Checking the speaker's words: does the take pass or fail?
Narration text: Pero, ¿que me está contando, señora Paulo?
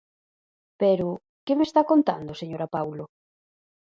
pass